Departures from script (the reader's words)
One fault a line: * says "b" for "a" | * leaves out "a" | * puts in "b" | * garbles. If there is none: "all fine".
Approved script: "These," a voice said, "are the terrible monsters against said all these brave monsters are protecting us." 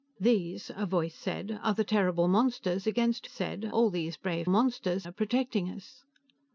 all fine